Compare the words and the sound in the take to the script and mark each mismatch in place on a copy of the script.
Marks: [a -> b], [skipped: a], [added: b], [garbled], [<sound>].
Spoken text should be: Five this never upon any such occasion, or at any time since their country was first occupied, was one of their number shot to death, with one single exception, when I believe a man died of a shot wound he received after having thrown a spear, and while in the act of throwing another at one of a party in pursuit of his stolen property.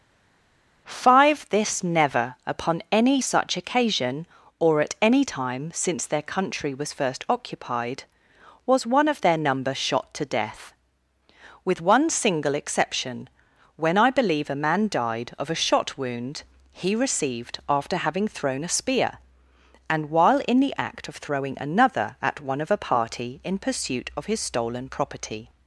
Five this never upon any such occasion, or at any time since their country was first occupied, was one of their number shot to death, with one single exception, when I believe a man died of a shot wound he received after having thrown a spear, and while in the act of throwing another at one of a party in pursuit of his stolen property.